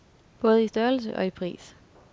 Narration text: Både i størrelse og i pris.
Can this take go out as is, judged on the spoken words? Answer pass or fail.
pass